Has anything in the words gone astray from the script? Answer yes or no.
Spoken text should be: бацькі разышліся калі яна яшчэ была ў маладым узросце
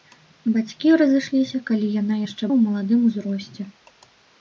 yes